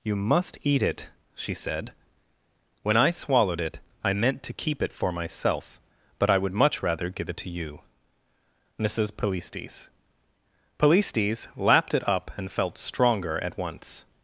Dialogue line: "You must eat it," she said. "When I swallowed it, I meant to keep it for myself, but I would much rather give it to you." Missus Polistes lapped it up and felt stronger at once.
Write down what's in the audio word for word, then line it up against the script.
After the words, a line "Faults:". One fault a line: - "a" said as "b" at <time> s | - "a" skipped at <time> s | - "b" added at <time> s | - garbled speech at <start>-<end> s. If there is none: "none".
"You must eat it," she said. "When I swallowed it, I meant to keep it for myself, but I would much rather give it to you." Missus Polistes Polistes lapped it up and felt stronger at once.
Faults:
- "Polistes" added at 10.8 s